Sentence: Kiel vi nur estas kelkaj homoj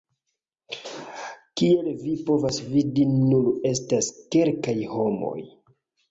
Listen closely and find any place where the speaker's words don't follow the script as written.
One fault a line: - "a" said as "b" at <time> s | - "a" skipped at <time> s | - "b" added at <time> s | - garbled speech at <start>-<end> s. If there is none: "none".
- "povas vidi" added at 2.3 s